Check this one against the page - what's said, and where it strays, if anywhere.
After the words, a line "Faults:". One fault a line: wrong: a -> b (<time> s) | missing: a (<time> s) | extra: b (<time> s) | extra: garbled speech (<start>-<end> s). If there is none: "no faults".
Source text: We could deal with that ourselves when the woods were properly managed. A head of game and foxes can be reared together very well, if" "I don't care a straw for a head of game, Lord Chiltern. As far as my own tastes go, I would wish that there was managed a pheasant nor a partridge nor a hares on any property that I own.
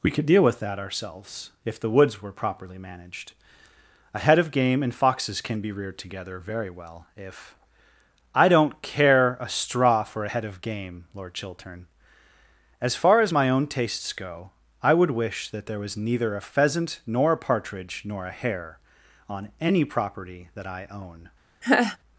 We could deal with that ourselves if the woods were properly managed. A head of game and foxes can be reared together very well, if" "I don't care a straw for a head of game, Lord Chiltern. As far as my own tastes go, I would wish that there was neither a pheasant nor a partridge nor a hare on any property that I own.
Faults:
wrong: when -> if (1.6 s)
wrong: managed -> neither (16.0 s)
wrong: hares -> hare (18.4 s)